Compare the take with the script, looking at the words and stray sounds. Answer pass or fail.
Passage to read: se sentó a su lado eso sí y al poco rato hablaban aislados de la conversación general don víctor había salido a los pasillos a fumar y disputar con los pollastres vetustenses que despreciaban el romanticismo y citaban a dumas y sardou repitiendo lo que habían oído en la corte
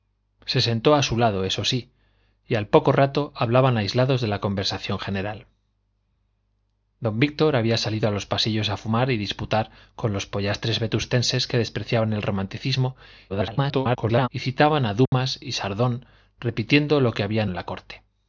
fail